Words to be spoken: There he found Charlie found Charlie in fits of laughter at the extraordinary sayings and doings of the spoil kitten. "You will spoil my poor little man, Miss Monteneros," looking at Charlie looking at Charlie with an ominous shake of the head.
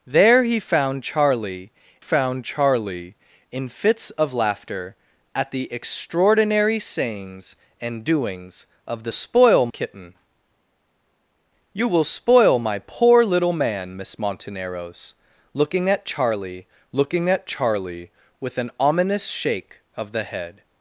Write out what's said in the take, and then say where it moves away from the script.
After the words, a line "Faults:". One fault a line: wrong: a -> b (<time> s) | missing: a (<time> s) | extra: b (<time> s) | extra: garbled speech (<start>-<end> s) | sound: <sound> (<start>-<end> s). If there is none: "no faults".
There he found Charlie found Charlie in fits of laughter at the extraordinary sayings and doings of the spoil kitten. "You will spoil my poor little man, Miss Monteneros," looking at Charlie looking at Charlie with an ominous shake of the head.
Faults:
no faults